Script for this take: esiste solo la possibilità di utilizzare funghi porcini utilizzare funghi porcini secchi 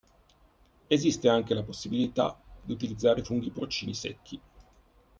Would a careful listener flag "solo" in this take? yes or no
yes